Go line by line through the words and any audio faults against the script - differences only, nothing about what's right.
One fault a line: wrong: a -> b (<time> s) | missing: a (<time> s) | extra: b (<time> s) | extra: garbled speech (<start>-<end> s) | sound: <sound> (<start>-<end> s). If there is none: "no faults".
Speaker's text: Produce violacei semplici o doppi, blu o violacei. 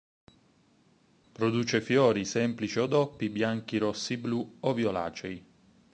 wrong: violacei -> fiori (1.8 s)
extra: bianchi rossi (3.3 s)